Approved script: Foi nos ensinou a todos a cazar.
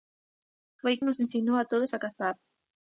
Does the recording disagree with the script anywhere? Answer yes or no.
no